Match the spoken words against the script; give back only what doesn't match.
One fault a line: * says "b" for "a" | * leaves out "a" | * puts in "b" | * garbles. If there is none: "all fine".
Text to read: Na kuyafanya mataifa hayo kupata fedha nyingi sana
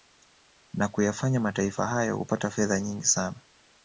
all fine